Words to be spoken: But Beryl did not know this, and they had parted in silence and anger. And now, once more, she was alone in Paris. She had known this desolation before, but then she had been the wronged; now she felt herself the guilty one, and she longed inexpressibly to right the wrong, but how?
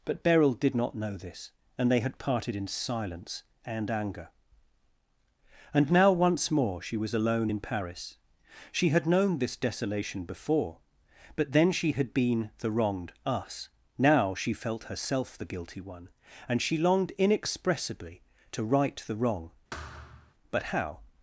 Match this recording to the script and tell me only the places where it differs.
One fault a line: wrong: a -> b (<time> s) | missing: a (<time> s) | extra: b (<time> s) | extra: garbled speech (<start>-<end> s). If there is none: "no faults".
extra: us (13.3 s)